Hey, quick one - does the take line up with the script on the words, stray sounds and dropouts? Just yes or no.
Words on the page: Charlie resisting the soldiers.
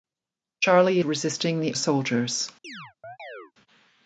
no